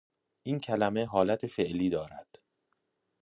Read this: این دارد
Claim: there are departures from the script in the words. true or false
true